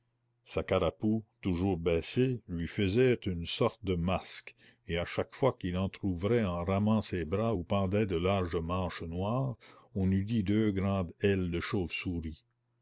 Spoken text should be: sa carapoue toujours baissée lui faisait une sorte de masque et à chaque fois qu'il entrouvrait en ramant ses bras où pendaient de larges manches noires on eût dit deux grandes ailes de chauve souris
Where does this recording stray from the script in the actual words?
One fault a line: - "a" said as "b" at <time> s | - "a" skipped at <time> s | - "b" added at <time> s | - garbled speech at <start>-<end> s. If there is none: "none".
none